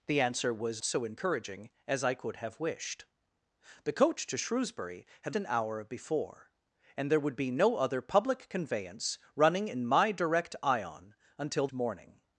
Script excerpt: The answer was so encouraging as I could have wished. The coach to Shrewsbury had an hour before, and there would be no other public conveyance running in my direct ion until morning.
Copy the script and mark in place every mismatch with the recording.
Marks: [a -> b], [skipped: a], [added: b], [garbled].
The answer was so encouraging as I could have wished. The coach to Shrewsbury had an hour before, and there would be no other public conveyance running in my direct ion until morning.